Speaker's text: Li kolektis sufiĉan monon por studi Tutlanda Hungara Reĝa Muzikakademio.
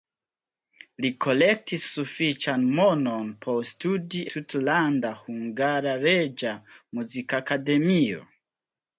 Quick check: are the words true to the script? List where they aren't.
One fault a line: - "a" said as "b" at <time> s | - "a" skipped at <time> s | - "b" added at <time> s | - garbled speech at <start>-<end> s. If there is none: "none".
none